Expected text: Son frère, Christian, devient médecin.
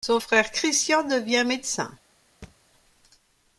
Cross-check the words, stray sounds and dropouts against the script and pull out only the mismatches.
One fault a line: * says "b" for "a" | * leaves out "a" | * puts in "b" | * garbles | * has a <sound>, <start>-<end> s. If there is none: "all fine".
* has a thud, 2.4-2.6 s